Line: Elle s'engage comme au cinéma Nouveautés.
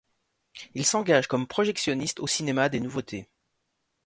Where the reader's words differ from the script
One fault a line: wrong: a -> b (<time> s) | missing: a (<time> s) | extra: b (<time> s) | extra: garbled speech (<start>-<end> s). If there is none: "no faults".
wrong: Elle -> Il (0.7 s)
extra: projectionniste (1.5 s)
extra: des (2.7 s)